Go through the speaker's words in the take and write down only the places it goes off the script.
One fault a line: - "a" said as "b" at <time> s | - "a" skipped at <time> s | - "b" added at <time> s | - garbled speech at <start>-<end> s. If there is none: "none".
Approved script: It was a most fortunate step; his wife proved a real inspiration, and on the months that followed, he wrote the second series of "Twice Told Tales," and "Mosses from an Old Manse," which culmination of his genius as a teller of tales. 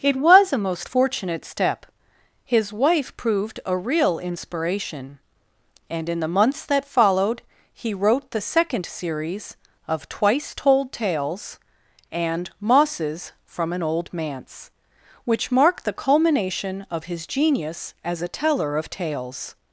- "on" said as "in" at 6.1 s
- "mark the" added at 15.5 s